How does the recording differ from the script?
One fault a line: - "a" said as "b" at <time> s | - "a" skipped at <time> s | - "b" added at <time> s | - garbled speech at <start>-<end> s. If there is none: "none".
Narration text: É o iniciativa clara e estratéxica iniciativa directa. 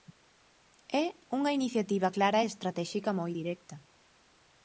- "o" said as "unha" at 1.4 s
- "iniciativa" said as "moi" at 3.2 s